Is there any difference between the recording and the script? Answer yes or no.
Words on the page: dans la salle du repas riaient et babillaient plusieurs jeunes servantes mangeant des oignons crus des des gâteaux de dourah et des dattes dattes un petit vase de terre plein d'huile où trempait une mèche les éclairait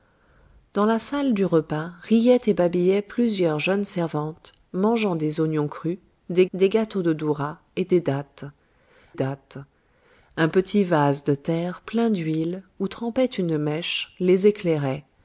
no